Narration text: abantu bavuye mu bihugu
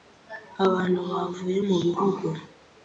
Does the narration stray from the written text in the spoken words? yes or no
no